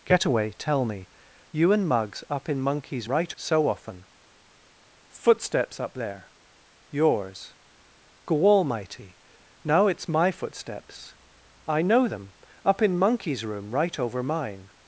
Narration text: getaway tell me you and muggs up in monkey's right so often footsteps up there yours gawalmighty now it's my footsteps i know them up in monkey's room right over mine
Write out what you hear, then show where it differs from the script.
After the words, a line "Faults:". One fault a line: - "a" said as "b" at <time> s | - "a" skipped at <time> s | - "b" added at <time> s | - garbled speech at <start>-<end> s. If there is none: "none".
getaway tell me you and muggs up in monkey's right so often footsteps up there yours gawalmighty now it's my footsteps i know them up in monkey's room right over mine
Faults:
none